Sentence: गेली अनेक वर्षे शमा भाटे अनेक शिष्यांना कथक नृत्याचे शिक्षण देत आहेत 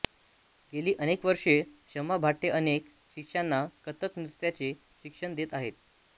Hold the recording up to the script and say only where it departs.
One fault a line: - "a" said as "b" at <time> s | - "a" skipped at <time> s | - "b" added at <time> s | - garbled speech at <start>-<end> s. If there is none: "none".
none